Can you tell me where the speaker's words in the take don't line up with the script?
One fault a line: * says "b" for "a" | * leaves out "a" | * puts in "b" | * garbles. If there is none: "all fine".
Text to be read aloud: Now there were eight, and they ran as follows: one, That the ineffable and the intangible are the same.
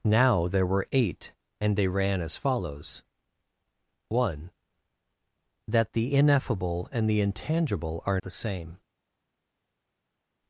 all fine